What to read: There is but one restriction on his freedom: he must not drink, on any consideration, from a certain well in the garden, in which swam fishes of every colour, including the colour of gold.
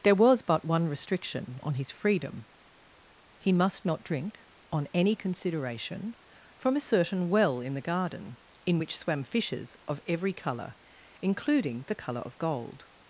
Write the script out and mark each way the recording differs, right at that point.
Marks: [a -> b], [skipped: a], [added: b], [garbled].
There [is -> was] but one restriction on his freedom: he must not drink, on any consideration, from a certain well in the garden, in which swam fishes of every colour, including the colour of gold.